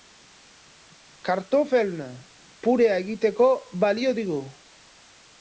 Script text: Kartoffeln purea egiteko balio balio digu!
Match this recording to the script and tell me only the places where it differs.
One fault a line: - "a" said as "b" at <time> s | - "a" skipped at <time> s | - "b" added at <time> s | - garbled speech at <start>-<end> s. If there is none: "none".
- "balio" skipped at 4.2 s